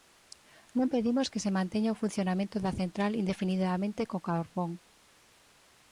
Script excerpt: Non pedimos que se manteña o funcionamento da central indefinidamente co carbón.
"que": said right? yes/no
yes